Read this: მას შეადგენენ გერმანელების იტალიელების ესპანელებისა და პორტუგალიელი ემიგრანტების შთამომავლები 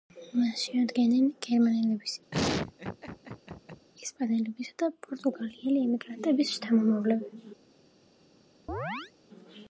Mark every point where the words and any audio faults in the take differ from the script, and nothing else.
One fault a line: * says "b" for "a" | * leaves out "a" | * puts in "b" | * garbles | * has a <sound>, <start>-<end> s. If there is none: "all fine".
* leaves out "იტალიელების"
* has a laugh, 2.3-3.9 s
* has a chirp, 8.7-9.1 s